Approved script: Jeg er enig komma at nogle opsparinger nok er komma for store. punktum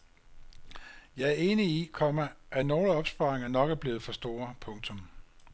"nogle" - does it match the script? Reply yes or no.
yes